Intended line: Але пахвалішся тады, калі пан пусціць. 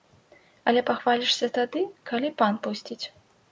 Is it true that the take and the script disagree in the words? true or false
false